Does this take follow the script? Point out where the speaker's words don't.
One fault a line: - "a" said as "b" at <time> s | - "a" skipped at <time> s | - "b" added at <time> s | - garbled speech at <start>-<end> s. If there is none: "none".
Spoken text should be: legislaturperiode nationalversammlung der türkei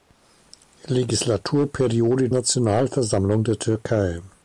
none